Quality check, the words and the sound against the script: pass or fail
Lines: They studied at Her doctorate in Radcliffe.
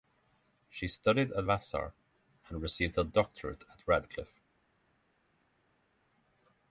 fail